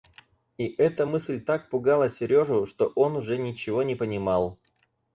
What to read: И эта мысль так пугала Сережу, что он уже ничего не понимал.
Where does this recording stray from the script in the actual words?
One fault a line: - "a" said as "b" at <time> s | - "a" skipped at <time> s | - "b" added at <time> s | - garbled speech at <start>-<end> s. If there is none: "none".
none